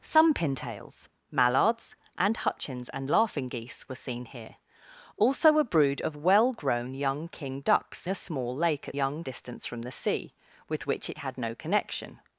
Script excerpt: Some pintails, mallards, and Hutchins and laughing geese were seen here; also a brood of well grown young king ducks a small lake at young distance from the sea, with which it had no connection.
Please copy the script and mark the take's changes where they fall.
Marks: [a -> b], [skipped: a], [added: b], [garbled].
Some pintails, mallards, and Hutchins and laughing geese were seen here; also a brood of well grown young king ducks a small lake at young distance from the sea, with which it had no connection.